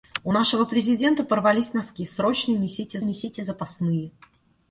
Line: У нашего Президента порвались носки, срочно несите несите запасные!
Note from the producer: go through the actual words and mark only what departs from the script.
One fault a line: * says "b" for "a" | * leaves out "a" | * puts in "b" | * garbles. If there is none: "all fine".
all fine